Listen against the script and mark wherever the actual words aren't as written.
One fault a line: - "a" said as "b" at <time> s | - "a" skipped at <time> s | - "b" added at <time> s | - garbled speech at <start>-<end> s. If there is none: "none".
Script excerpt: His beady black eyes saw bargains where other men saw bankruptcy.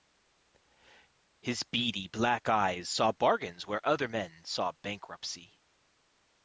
none